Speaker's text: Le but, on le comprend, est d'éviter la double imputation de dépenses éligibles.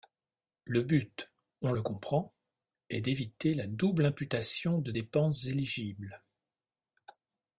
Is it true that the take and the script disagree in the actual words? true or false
false